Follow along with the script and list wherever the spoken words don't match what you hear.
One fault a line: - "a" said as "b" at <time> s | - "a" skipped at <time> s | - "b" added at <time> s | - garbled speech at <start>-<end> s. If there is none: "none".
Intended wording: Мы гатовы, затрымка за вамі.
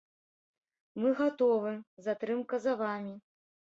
none